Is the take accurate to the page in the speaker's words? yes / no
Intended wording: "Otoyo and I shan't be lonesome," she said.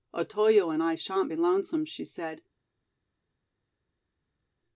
yes